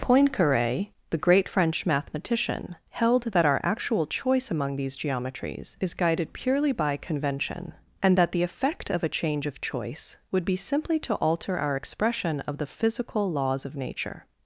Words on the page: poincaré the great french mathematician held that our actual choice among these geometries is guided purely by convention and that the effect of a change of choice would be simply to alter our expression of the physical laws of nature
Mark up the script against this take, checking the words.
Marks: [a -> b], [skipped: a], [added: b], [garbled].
poincaré the great french mathematician held that our actual choice among these geometries is guided purely by convention and that the effect of a change of choice would be simply to alter our expression of the physical laws of nature